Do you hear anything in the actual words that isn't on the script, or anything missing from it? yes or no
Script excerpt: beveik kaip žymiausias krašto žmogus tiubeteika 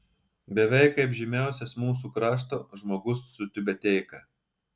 yes